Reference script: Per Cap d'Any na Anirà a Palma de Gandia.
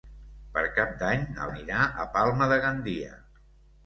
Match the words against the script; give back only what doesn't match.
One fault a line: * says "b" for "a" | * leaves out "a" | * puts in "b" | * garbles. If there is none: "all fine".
all fine